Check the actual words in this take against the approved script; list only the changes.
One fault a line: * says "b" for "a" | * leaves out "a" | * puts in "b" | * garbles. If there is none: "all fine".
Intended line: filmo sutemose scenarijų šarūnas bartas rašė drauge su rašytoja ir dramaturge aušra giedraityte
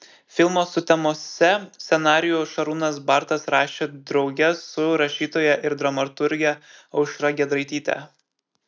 all fine